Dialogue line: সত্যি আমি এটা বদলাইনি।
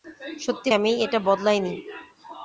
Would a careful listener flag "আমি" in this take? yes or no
no